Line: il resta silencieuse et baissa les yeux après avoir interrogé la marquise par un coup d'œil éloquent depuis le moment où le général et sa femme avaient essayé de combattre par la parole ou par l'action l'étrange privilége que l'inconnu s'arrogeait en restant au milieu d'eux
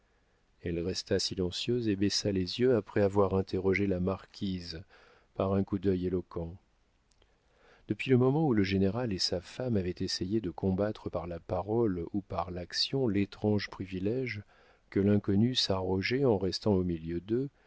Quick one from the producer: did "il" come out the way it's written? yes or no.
no